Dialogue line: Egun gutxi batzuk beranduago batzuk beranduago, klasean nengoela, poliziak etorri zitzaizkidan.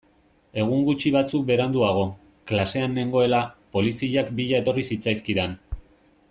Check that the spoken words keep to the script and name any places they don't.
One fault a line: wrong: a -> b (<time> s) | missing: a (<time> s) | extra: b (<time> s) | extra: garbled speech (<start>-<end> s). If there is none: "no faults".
missing: batzuk beranduago (2.1 s)
extra: bila (4.4 s)